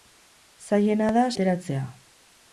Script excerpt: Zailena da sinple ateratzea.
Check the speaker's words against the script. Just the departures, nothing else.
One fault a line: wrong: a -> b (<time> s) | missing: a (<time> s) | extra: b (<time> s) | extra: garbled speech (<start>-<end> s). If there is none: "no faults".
missing: sinple (1.3 s)